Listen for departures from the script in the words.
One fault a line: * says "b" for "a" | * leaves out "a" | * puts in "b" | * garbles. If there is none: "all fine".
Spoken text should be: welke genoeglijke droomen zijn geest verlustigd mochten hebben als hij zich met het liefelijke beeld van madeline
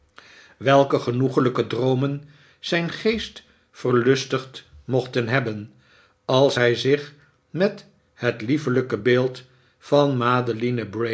all fine